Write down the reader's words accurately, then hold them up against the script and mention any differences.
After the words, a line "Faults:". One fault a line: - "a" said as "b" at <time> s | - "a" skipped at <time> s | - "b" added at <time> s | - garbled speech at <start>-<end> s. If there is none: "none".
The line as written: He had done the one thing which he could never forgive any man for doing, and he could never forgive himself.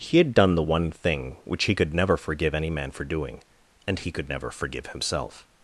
He had done the one thing which he could never forgive any man for doing, and he could never forgive himself.
Faults:
none